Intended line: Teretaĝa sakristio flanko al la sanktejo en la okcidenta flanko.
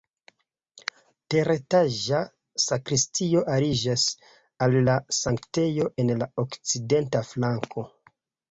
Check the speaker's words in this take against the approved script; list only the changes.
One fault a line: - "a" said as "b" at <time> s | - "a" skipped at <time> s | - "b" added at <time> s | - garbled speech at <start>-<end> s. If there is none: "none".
- "flanko" said as "aliĝas" at 3.6 s